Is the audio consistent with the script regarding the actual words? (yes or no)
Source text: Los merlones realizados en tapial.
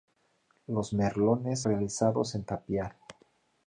yes